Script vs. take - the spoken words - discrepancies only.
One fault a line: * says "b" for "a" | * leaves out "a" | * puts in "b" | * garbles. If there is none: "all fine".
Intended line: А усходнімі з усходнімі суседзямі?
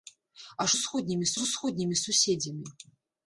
all fine